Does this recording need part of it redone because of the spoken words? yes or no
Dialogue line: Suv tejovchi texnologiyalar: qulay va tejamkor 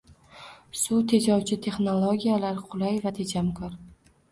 no